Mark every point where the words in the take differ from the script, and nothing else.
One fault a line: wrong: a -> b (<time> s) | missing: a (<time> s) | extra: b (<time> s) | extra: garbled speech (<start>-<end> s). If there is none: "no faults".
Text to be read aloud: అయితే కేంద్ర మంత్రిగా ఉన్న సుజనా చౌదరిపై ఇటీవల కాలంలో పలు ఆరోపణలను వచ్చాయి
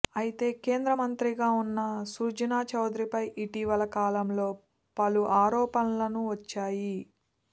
no faults